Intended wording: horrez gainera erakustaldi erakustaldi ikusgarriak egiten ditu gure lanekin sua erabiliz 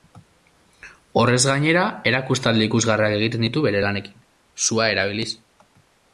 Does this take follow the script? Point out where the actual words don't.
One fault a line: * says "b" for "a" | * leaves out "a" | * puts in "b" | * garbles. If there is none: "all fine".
* leaves out "erakustaldi"
* says "bere" for "gure"